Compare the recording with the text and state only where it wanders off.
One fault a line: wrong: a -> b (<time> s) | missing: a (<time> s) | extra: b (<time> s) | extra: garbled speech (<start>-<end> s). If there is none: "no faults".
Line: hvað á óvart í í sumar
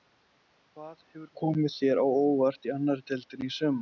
extra: hefur komið þér (1.1 s)
extra: annarri deildinni (2.8 s)